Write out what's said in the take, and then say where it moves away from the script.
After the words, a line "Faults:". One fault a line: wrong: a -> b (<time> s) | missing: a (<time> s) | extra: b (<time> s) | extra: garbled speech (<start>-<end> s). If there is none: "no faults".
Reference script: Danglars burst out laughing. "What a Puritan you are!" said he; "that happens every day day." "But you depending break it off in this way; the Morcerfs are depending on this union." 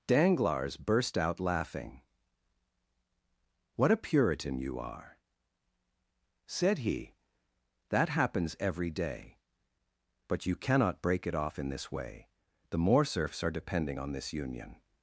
Danglars burst out laughing. "What a Puritan you are!" said he; "that happens every day." "But you cannot break it off in this way; the Morcerfs are depending on this union."
Faults:
missing: day (9.4 s)
wrong: depending -> cannot (10.6 s)